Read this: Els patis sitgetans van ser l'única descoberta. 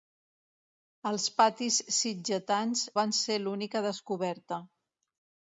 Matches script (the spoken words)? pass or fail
pass